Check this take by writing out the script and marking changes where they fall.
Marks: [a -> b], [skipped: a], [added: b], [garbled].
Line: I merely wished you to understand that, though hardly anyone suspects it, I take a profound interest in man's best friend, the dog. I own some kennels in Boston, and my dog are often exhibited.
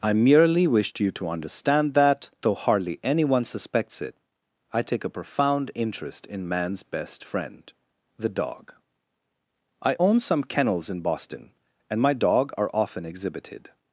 I merely wished you to understand that, though hardly anyone suspects it, I take a profound interest in man's best friend, the dog. I own some kennels in Boston, and my dog are often exhibited.